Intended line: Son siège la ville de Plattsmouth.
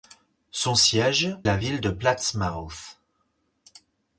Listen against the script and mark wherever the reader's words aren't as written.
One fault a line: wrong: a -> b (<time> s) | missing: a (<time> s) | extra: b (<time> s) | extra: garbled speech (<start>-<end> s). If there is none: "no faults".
no faults